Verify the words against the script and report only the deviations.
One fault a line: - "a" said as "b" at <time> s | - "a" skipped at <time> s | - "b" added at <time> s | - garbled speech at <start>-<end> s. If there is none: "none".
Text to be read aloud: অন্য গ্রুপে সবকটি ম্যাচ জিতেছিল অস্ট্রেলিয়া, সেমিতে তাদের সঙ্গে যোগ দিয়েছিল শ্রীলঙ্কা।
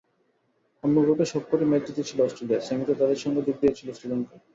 none